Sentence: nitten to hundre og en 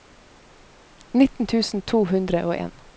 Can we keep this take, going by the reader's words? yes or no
no